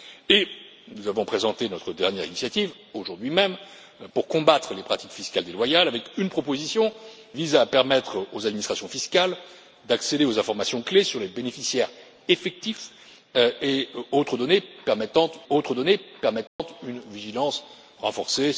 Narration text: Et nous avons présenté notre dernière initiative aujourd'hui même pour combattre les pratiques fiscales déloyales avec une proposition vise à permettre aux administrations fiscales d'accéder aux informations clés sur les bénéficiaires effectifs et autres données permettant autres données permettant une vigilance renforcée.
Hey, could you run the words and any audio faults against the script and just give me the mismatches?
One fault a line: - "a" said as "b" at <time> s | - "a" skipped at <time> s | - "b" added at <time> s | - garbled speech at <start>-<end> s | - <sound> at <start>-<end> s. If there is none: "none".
- dropout at 16.5-16.6 s